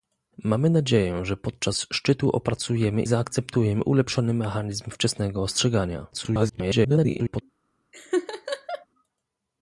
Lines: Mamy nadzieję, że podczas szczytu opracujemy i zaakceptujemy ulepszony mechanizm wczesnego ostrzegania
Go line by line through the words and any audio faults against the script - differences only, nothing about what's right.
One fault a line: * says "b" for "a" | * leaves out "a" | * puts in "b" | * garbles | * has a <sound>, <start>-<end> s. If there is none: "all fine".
* leaves out "i"
* garbles
* has a laugh, 7.9-8.9 s